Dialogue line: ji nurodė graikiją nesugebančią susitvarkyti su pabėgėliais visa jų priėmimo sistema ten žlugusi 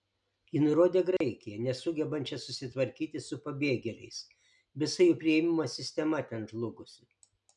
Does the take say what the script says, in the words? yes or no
yes